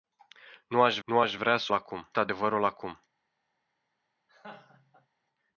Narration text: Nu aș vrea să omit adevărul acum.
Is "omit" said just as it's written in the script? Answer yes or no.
no